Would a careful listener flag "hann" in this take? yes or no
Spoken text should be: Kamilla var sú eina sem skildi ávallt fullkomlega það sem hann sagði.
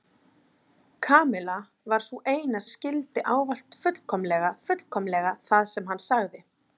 no